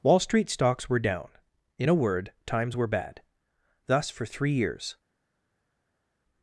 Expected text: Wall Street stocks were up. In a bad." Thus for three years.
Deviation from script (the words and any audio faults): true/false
true